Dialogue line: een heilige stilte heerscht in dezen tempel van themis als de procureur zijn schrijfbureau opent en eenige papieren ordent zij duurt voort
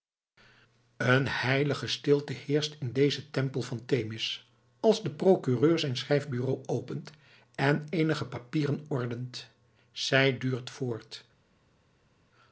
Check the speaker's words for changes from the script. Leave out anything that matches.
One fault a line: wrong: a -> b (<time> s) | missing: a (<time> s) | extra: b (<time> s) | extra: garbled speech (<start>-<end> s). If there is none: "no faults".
no faults